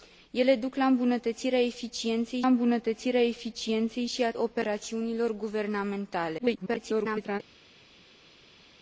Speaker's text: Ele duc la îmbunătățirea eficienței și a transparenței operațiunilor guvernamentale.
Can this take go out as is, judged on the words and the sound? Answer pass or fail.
fail